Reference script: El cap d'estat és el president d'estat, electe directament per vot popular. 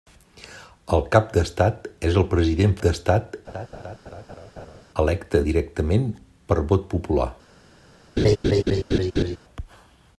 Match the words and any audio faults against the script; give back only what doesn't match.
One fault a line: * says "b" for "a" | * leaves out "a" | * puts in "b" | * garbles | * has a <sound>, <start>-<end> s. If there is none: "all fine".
* has a laugh, 3.5-4.8 s
* has a laugh, 8.2-9.4 s